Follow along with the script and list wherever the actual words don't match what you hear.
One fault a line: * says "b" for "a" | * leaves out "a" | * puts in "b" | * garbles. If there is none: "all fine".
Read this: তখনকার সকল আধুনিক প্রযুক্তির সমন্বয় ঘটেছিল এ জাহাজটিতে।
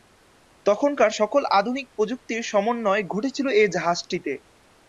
all fine